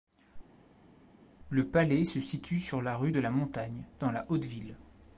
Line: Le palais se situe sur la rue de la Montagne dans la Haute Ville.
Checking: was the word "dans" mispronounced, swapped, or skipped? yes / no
no